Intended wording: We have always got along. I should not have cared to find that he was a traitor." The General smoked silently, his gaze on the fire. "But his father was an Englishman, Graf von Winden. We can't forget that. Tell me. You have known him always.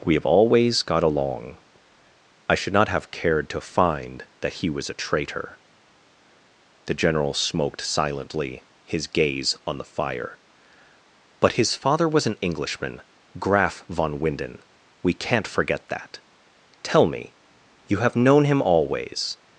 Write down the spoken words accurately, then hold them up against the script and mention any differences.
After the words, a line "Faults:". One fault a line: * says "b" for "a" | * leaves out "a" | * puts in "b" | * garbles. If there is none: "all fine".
We have always got along. I should not have cared to find that he was a traitor." The General smoked silently, his gaze on the fire. "But his father was an Englishman, Graf von Winden. We can't forget that. Tell me. You have known him always.
Faults:
all fine